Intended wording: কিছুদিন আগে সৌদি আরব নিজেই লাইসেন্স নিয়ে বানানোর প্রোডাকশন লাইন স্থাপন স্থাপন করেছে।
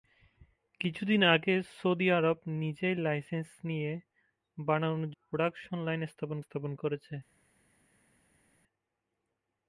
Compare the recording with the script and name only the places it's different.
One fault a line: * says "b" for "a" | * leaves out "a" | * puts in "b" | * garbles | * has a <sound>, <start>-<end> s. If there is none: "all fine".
all fine